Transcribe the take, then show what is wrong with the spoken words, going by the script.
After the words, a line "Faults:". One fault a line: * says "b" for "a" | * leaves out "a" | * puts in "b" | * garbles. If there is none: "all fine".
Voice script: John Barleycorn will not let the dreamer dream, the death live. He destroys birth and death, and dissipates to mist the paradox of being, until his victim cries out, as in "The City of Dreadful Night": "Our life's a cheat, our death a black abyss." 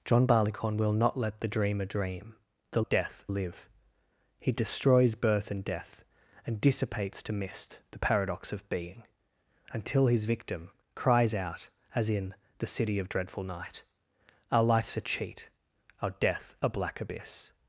John Barleycorn will not let the dreamer dream, the death live. He destroys birth and death, and dissipates to mist the paradox of being, until his victim cries out, as in "The City of Dreadful Night": "Our life's a cheat, our death a black abyss."
Faults:
all fine